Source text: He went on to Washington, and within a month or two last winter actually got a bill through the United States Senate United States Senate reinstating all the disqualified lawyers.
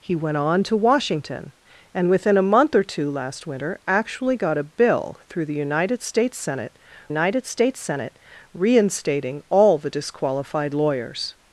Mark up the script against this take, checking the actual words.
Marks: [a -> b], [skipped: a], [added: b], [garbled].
He went on to Washington, and within a month or two last winter actually got a bill through the United States Senate United States Senate reinstating all the disqualified lawyers.